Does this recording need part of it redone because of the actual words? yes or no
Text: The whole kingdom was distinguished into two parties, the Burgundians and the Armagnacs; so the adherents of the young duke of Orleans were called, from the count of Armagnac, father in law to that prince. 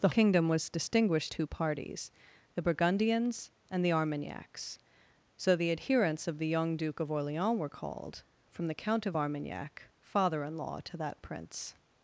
yes